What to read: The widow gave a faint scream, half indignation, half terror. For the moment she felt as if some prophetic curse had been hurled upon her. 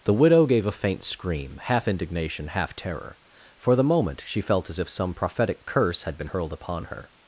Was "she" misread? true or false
false